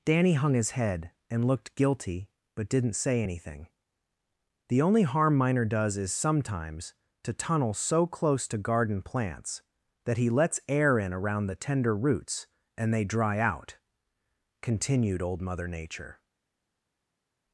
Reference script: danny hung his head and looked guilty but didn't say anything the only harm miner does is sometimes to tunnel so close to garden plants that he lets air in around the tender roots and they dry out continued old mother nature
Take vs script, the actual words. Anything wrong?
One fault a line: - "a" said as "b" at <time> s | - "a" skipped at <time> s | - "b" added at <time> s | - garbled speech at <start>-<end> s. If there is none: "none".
none